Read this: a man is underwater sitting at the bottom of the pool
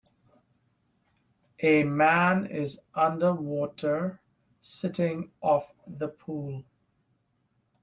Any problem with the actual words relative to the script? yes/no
yes